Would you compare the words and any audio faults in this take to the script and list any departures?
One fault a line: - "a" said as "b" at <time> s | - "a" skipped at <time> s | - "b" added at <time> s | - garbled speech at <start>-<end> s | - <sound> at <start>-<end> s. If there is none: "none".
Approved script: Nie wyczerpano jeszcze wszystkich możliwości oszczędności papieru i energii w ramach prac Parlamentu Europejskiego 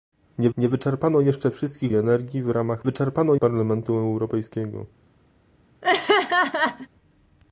- "nie" added at 0.6 s
- "możliwości oszczędności papieru" skipped at 1.9 s
- "prac" said as "wyczerpano" at 2.8 s
- laugh at 5.8-6.9 s